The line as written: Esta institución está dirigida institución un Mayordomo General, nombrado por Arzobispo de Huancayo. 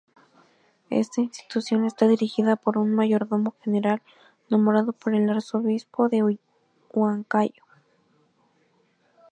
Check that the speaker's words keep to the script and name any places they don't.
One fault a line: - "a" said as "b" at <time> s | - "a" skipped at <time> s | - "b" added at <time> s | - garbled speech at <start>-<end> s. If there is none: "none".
- "institución" said as "por" at 2.5 s
- "el" added at 5.1 s